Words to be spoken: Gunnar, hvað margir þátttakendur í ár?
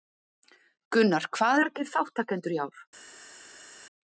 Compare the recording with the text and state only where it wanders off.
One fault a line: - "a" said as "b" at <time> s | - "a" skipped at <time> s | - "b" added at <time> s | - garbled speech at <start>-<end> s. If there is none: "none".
none